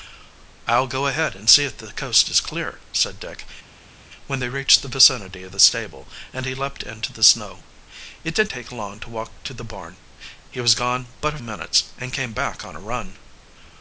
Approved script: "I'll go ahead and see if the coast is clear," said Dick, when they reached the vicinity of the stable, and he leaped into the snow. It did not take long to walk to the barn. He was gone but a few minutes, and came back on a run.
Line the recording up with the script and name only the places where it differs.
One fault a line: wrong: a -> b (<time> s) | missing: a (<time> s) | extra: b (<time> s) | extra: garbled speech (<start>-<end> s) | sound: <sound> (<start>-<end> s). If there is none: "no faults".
missing: not (8.5 s)
missing: few (11.4 s)